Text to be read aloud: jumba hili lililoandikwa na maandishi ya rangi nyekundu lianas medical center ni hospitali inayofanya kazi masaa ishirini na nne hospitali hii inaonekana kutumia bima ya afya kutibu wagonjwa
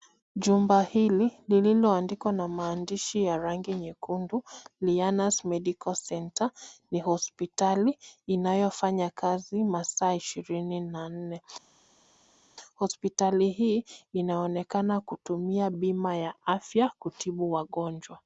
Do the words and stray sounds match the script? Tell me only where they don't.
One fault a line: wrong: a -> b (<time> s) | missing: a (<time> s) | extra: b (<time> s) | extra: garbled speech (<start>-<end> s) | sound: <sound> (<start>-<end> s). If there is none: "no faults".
no faults